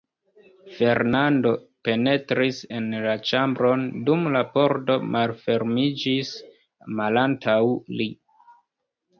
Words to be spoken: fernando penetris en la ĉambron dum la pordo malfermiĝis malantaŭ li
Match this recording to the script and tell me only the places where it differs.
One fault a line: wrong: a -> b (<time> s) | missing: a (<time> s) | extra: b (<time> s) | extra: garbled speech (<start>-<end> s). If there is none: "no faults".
no faults